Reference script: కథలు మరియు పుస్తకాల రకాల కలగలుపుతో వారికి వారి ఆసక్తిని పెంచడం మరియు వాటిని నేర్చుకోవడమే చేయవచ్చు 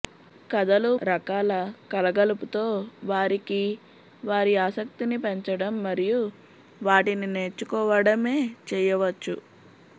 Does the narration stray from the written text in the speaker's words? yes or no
yes